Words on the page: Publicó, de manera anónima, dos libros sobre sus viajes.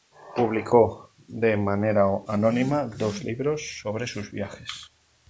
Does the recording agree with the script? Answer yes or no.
yes